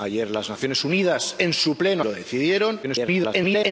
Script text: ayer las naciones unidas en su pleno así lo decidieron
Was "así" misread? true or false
true